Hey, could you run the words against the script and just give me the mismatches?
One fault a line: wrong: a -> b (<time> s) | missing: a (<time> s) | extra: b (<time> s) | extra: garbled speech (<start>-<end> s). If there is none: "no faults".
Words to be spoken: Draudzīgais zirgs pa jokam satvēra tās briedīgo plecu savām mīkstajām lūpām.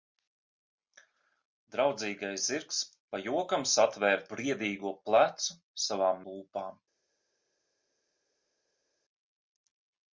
missing: tās (4.2 s)
missing: mīkstajām (6.2 s)